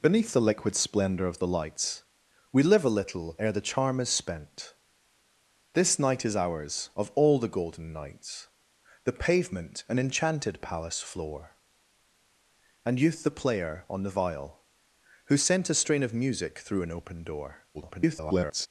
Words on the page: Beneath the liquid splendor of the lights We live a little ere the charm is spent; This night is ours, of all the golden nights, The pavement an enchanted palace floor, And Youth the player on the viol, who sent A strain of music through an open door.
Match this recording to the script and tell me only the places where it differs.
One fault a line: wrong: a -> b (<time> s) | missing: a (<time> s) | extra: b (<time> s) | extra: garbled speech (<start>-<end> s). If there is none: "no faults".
extra: garbled speech (17.7-18.7 s)